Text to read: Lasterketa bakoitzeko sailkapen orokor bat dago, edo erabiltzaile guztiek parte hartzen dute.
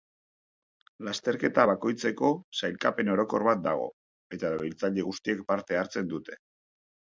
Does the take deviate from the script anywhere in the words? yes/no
yes